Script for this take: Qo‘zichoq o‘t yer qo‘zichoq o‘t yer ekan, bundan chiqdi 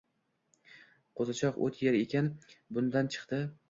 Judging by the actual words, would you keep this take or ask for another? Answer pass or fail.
fail